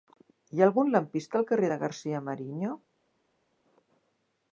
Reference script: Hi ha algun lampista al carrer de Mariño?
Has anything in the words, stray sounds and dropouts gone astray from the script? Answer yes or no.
yes